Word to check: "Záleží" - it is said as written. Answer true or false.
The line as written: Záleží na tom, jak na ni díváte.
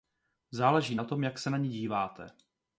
true